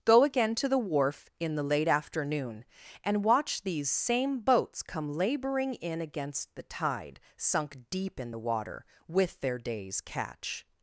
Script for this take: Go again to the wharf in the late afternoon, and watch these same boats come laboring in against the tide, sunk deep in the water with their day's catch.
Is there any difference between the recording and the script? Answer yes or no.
no